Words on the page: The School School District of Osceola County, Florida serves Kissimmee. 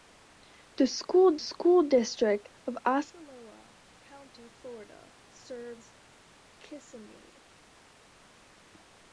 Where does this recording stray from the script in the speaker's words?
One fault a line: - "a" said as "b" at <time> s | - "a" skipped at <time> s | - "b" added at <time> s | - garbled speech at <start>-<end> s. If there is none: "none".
none